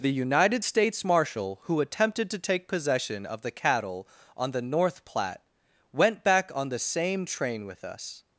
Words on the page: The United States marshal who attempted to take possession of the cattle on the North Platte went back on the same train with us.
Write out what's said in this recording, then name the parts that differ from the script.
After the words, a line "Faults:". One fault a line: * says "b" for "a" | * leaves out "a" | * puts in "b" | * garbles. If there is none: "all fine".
The United States marshal who attempted to take possession of the cattle on the North Platte went back on the same train with us.
Faults:
all fine